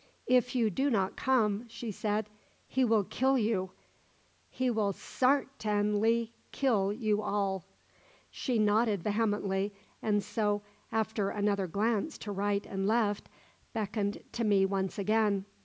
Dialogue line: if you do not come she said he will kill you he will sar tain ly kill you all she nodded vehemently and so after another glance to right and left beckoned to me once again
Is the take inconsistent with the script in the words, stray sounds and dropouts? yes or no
no